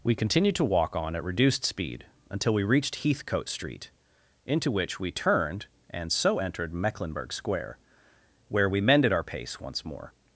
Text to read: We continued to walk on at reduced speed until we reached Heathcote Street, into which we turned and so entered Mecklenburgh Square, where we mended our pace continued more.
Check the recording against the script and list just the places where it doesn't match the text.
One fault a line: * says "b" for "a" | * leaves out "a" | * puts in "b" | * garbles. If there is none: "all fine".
* says "once" for "continued"